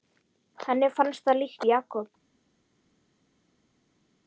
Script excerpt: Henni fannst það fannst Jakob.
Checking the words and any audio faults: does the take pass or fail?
fail